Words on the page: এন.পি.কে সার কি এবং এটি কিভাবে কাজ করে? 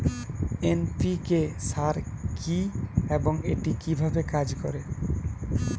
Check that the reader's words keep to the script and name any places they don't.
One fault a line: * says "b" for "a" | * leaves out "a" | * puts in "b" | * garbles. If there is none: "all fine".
all fine